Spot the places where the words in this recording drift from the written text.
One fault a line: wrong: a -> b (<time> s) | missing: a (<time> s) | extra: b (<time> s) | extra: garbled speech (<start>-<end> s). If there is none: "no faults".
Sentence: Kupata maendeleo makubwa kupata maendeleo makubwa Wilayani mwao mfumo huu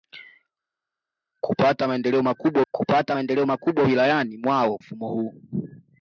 no faults